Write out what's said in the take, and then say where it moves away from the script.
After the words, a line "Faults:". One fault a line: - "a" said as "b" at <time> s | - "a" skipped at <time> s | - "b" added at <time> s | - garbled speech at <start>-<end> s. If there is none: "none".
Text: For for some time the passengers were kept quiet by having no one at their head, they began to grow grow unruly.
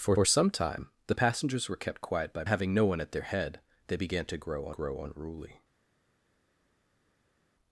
For for some time the passengers were kept quiet by having no one at their head, they began to grow grow unruly.
Faults:
none